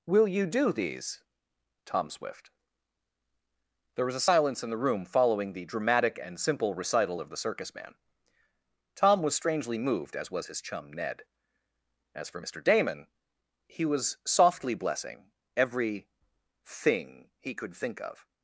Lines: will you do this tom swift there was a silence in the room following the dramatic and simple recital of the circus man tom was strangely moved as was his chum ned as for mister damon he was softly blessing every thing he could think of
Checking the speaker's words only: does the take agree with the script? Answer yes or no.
no